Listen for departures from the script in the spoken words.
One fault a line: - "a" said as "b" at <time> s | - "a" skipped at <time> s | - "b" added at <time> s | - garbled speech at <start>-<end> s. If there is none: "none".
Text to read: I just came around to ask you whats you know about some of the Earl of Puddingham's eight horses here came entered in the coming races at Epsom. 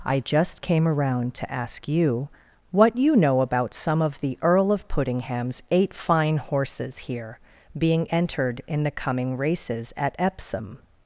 - "whats" said as "what" at 2.7 s
- "fine" added at 5.9 s
- "came" said as "being" at 7.8 s